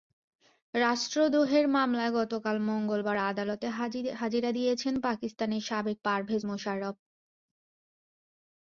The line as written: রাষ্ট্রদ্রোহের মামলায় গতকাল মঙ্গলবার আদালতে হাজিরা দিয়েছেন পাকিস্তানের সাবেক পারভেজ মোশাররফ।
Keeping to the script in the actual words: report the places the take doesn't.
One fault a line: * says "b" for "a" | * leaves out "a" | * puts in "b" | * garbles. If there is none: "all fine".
all fine